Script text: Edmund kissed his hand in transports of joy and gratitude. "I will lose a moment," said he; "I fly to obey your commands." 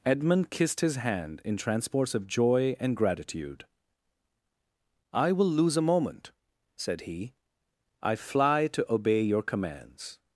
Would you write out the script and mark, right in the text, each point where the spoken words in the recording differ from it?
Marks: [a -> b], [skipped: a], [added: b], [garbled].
Edmund kissed his hand in transports of joy and gratitude. "I will lose a moment," said he; "I fly to obey your commands."